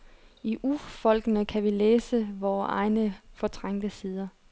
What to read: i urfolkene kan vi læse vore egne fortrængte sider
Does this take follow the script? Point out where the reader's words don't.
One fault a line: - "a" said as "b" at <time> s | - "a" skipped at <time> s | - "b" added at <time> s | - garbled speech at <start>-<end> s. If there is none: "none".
none